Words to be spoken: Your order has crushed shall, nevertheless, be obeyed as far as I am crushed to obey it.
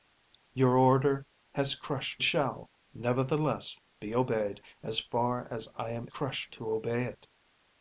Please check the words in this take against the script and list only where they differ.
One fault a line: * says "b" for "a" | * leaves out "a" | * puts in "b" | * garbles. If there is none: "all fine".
all fine